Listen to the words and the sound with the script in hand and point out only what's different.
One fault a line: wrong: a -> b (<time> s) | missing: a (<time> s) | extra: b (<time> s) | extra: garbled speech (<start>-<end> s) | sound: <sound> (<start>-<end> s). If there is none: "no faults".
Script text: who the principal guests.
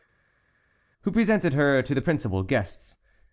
extra: presented her to (1.1 s)